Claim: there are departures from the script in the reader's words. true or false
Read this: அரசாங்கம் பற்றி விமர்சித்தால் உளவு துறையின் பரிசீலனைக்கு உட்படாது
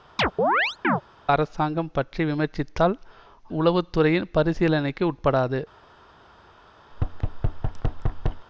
false